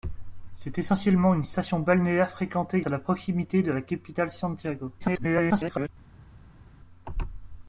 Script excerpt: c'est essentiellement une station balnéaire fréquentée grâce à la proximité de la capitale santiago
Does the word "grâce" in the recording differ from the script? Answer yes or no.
yes